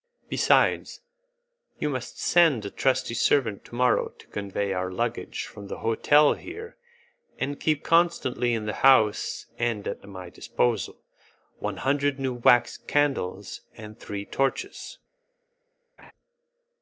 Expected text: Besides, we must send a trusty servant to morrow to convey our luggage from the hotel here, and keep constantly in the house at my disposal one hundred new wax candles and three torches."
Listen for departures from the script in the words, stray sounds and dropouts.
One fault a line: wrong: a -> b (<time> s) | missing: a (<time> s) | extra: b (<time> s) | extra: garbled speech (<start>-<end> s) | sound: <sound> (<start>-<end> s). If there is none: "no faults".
wrong: we -> you (1.8 s)
extra: and (9.6 s)
sound: laugh (16.0-16.1 s)